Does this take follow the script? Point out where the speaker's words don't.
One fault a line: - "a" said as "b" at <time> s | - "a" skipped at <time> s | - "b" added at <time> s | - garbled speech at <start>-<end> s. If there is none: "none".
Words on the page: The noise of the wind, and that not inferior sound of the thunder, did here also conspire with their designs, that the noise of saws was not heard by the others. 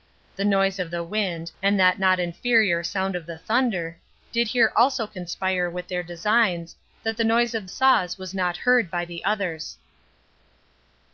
none